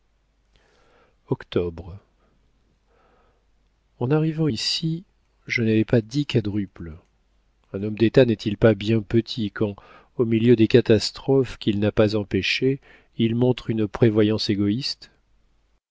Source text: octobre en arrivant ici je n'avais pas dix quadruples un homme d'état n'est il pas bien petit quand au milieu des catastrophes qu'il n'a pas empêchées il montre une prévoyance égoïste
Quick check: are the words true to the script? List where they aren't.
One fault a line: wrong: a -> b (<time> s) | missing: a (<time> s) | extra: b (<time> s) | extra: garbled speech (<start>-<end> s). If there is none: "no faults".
no faults